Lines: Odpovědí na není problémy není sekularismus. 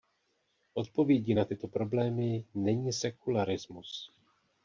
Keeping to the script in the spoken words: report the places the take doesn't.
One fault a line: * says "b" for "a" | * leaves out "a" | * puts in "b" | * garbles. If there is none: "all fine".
* says "tyto" for "není"